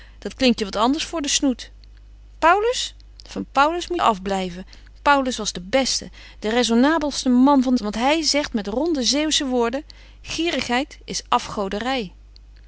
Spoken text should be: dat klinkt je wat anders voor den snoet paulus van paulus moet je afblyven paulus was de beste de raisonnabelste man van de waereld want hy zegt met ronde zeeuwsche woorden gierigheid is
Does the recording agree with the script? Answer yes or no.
no